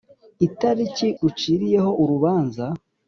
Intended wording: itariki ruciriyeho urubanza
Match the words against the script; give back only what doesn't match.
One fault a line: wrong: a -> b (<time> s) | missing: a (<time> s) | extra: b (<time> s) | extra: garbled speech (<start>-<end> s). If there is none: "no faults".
no faults